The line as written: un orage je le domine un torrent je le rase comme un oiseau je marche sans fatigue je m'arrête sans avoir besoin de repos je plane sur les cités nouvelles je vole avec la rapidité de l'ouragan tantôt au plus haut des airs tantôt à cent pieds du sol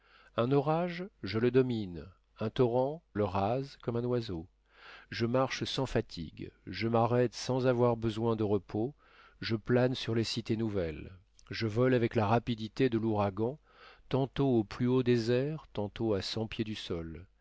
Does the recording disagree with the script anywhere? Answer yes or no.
yes